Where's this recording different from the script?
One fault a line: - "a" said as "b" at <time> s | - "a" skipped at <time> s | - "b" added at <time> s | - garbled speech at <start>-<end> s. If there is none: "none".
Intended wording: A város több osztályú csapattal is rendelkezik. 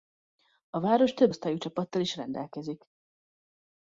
none